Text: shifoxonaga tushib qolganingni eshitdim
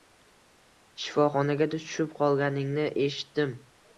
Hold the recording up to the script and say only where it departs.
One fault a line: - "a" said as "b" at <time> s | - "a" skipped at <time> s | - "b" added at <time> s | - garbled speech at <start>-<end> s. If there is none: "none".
none